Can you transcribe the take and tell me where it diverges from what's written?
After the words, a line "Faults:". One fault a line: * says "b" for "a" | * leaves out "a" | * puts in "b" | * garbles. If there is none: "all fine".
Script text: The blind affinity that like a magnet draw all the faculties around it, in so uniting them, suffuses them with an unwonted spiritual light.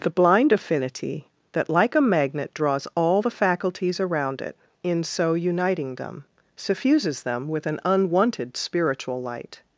The blind affinity that like a magnet draws all the faculties around it, in so uniting them, suffuses them with an unwonted spiritual light.
Faults:
* says "draws" for "draw"